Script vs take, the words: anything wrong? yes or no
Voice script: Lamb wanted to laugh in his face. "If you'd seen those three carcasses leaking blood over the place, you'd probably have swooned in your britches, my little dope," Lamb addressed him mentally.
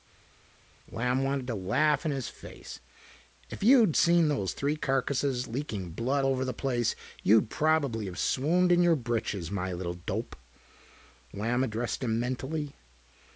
no